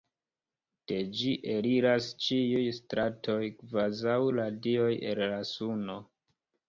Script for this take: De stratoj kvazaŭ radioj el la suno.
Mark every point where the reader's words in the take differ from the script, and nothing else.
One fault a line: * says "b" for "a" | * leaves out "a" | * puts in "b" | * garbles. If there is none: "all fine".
* puts in "ĝi eliras ĉiuj"